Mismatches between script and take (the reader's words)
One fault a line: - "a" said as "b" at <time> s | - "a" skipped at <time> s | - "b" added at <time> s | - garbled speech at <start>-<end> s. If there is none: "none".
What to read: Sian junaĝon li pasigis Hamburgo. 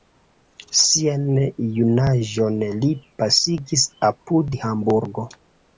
- "apud" added at 4.1 s